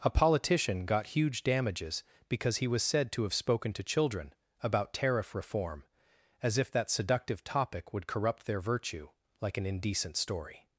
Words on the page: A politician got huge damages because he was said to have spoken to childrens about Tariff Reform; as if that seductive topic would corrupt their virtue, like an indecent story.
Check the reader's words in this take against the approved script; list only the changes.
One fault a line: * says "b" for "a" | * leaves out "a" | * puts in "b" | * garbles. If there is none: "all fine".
* says "children" for "childrens"